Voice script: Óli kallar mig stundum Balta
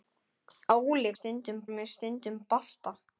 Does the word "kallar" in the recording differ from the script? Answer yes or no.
yes